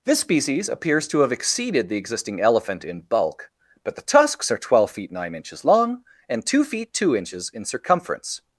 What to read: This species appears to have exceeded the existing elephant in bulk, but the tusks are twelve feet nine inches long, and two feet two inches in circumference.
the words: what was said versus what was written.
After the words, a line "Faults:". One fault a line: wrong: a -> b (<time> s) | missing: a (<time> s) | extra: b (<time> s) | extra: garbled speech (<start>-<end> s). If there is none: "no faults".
This species appears to have exceeded the existing elephant in bulk, but the tusks are twelve feet nine inches long, and two feet two inches in circumference.
Faults:
no faults